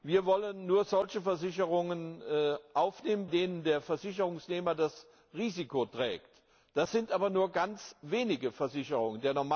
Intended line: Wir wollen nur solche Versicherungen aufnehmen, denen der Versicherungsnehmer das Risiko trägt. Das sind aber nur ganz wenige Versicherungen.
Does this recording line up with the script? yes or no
yes